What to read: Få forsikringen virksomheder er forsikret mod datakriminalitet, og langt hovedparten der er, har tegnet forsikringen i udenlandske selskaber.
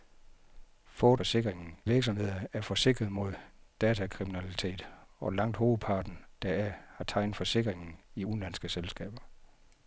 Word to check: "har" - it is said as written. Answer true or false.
true